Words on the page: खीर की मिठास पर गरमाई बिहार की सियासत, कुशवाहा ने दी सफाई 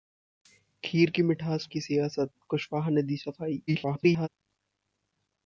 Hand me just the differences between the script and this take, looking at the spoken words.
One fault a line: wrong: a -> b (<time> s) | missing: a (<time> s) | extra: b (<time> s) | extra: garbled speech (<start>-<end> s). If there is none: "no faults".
missing: पर गरमाई बिहार (1.7 s)
extra: garbled speech (3.7-4.3 s)